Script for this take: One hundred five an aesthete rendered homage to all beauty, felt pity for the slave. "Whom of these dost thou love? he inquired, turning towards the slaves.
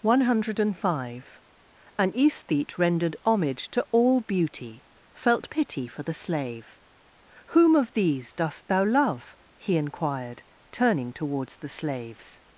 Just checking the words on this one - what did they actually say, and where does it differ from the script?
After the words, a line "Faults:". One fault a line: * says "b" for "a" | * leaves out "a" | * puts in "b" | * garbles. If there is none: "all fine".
One hundred five an aesthete rendered homage to all beauty, felt pity for the slave. "Whom of these dost thou love? he inquired, turning towards the slaves.
Faults:
all fine